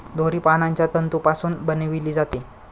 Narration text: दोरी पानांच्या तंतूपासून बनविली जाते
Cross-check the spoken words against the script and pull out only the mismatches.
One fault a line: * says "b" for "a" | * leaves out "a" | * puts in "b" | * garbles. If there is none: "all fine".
all fine